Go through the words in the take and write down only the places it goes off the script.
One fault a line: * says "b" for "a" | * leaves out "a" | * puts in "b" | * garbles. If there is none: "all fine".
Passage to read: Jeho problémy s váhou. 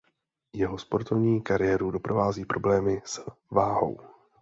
* puts in "sportovní kariéru doprovází"